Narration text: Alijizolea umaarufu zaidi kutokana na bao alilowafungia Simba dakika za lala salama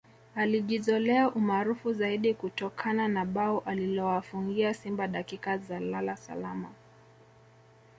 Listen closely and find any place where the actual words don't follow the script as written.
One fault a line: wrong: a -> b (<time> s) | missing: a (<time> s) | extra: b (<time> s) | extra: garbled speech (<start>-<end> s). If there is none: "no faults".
no faults